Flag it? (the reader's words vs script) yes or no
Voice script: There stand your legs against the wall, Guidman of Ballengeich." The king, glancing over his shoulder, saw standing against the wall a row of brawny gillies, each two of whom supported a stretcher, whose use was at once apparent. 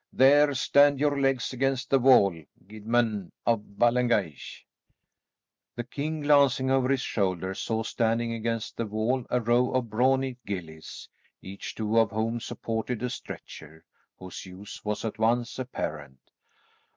no